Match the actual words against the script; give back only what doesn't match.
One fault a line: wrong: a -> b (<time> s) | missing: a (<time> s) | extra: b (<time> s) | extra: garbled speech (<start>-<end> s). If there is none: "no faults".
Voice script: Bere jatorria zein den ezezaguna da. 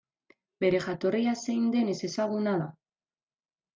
no faults